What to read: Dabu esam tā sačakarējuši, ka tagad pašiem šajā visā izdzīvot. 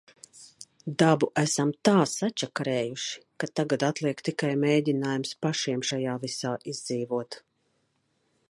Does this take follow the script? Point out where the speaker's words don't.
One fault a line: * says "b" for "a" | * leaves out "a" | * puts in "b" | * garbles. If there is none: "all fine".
* puts in "atliek tikai mēģinājums"